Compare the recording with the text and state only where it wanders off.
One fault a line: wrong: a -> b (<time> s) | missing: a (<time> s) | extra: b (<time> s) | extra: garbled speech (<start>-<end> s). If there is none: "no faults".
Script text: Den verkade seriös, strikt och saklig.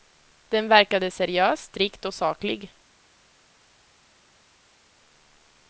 no faults